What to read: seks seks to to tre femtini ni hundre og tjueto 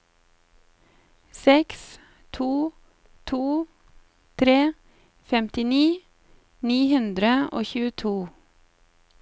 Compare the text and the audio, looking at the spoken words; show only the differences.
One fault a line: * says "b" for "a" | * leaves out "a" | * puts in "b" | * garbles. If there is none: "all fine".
* leaves out "seks"